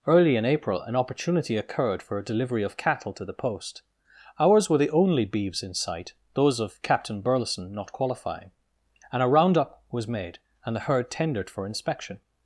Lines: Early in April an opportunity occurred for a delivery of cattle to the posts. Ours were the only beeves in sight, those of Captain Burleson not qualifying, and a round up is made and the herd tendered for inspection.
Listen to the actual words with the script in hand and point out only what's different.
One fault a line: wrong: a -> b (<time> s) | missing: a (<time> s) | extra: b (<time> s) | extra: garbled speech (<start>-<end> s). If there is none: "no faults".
wrong: posts -> post (3.3 s)
wrong: is -> was (9.9 s)